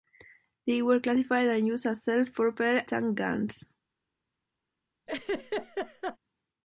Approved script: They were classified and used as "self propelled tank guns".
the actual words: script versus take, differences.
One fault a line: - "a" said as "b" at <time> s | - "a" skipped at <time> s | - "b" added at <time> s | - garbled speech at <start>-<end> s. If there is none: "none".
none